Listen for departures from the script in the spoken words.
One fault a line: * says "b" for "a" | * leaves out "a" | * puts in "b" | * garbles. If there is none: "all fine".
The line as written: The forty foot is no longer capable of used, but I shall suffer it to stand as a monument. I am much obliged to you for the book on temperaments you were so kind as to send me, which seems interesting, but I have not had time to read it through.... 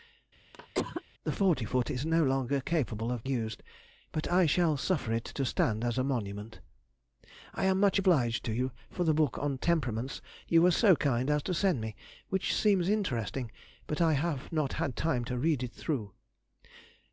all fine